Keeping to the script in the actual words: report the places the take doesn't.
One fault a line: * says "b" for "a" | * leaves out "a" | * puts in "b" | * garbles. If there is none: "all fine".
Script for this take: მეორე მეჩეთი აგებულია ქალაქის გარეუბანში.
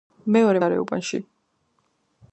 * leaves out "მეჩეთი აგებულია ქალაქის"